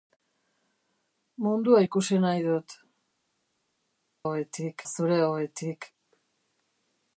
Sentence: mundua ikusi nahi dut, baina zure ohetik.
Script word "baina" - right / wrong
wrong